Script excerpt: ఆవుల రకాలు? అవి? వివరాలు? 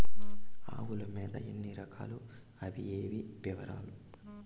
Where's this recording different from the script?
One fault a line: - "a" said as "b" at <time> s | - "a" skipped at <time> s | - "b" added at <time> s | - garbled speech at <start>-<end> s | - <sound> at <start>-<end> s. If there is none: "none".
- "మేత ఎన్ని" added at 1.1 s
- "ఏవి" added at 2.8 s